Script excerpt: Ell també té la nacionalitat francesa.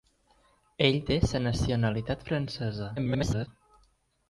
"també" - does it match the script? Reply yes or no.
no